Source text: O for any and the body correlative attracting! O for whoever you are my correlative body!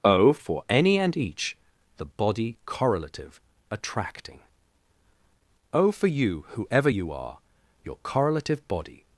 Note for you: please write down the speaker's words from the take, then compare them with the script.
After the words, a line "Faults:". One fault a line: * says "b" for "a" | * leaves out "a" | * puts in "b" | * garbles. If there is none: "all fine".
O for any and each the body correlative attracting! O for you whoever you are your correlative body!
Faults:
* puts in "each"
* puts in "you"
* says "your" for "my"